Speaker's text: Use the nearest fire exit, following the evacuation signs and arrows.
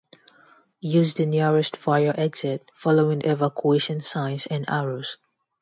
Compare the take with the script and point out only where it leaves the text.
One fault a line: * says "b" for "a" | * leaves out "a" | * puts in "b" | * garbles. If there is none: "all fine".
all fine